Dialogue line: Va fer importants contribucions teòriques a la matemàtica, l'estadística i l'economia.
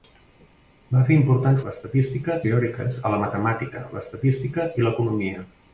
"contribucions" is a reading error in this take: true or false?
true